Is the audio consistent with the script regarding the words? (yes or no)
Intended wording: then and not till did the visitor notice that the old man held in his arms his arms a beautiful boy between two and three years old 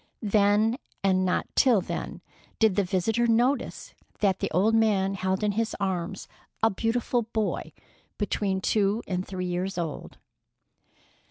no